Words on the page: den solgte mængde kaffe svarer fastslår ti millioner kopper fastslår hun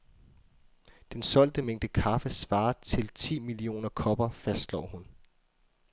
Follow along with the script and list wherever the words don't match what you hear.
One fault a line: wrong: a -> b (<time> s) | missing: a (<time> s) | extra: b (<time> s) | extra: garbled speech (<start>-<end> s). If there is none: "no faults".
wrong: fastslår -> til (2.7 s)